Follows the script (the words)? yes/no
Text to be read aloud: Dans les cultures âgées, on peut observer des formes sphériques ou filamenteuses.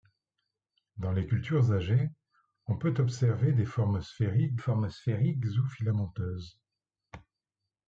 no